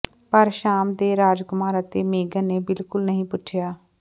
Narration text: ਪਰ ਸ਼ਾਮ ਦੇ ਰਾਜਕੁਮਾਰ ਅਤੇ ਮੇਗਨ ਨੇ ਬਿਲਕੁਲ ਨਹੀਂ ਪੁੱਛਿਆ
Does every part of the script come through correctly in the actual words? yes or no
yes